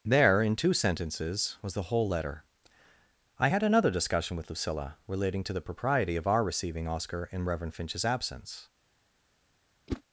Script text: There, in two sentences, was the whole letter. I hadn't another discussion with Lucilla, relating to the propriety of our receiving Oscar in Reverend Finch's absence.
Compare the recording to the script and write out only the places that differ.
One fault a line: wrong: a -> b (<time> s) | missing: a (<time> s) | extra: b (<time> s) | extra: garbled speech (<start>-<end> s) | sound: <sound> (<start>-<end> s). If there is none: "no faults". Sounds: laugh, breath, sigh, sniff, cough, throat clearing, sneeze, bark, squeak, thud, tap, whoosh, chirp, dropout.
wrong: hadn't -> had (3.5 s)
sound: whoosh (9.9-10.0 s)